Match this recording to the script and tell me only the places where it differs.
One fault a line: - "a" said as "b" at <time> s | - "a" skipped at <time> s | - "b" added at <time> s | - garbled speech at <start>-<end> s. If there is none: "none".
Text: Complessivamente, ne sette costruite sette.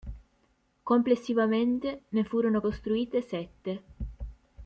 - "sette" said as "furono" at 2.2 s